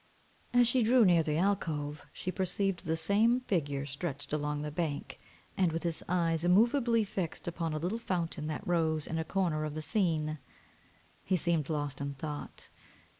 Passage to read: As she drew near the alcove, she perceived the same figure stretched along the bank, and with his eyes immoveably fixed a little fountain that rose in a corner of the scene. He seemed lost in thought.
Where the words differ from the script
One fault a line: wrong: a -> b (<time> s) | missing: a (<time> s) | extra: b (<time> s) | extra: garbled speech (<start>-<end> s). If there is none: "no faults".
extra: upon (7.5 s)